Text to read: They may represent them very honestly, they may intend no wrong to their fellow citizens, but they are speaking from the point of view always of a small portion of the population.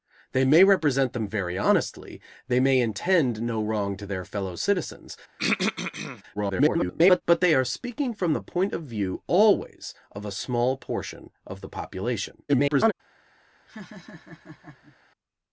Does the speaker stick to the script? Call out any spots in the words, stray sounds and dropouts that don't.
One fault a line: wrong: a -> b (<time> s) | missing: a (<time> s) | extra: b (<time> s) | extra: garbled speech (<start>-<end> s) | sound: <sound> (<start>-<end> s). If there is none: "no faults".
sound: throat clearing (5.4-6.2 s)
extra: garbled speech (6.3-7.2 s)
extra: garbled speech (12.5-12.9 s)
sound: laugh (13.7-15.0 s)